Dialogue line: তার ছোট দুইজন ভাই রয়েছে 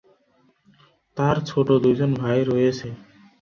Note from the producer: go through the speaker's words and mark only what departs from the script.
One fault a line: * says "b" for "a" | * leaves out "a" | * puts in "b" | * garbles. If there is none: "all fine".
all fine